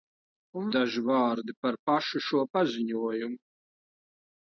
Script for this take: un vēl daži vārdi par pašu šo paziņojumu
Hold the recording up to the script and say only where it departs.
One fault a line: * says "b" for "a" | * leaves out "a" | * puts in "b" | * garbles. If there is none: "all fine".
* leaves out "vēl"